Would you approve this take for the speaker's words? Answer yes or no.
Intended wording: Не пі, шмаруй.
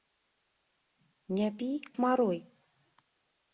yes